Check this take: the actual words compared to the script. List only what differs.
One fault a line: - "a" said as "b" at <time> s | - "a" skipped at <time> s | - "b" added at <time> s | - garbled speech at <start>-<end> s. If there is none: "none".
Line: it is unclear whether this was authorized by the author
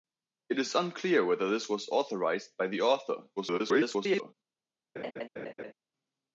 - garbled speech at 3.4-4.3 s